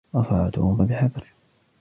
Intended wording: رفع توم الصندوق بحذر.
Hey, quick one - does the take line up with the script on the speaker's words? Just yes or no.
no